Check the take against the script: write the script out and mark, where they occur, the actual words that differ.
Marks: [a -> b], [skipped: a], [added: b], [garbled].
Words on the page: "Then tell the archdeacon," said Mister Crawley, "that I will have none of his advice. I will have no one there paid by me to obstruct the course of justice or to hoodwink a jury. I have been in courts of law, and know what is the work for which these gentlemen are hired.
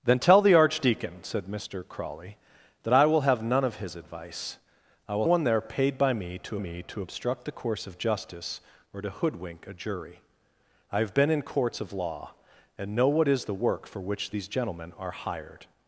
"Then tell the archdeacon," said Mister Crawley, "that I will have none of his advice. I will [skipped: have no] one there paid by me to [added: me to] obstruct the course of justice or to hoodwink a jury. I have been in courts of law, and know what is the work for which these gentlemen are hired.